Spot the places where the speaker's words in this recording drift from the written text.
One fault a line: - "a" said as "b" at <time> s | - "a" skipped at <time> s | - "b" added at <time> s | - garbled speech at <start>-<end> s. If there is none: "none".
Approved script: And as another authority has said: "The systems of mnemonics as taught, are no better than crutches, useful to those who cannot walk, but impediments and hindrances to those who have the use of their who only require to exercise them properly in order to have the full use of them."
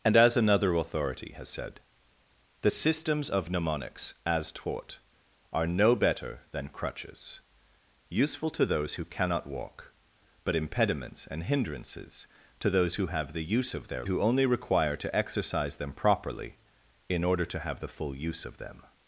none